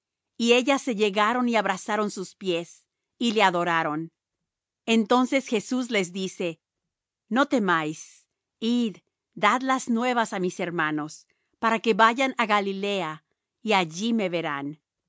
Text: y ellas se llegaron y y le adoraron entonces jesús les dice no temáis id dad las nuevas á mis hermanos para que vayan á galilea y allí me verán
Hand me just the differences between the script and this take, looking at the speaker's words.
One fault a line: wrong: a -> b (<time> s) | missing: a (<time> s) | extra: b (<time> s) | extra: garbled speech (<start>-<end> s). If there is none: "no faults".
extra: abrazaron sus pies (1.6 s)